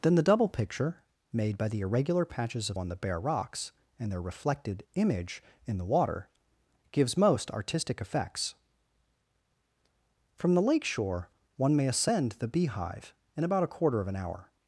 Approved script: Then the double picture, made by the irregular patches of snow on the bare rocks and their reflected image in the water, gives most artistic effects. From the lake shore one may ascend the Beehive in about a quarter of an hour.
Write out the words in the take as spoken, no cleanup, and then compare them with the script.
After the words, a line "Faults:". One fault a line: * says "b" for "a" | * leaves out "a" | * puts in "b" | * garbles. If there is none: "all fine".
Then the double picture, made by the irregular patches of on the bare rocks and their reflected image in the water, gives most artistic effects. From the lake shore one may ascend the Beehive in about a quarter of an hour.
Faults:
* leaves out "snow"